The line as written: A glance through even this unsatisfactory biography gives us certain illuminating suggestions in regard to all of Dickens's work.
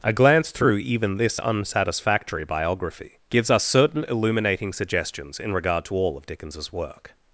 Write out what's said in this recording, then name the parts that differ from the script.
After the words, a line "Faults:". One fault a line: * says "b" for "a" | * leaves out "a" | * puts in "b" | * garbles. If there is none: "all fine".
A glance through even this unsatisfactory biography gives us certain illuminating suggestions in regard to all of Dickens's work.
Faults:
all fine